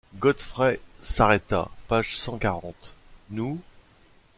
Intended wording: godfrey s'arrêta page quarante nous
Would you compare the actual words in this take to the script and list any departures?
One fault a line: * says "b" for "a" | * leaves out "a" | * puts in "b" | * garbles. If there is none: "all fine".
* puts in "cent"